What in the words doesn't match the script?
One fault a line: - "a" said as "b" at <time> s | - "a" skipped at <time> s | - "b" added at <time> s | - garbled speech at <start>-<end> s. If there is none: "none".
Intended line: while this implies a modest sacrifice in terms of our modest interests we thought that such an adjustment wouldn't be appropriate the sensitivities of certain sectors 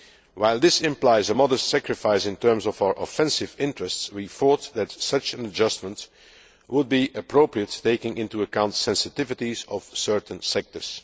- "modest" said as "offensive" at 3.0 s
- "wouldn't" said as "would" at 6.7 s
- "taking into account" added at 7.8 s